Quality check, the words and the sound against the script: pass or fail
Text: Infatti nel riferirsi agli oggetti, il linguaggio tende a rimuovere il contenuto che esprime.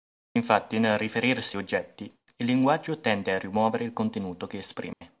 fail